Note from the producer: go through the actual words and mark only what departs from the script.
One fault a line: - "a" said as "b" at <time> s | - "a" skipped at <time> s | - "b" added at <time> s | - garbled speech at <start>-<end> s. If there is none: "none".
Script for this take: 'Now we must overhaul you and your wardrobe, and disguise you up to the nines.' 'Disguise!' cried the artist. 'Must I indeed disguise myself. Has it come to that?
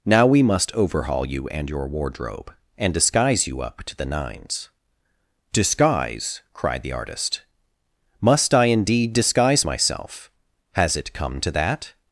none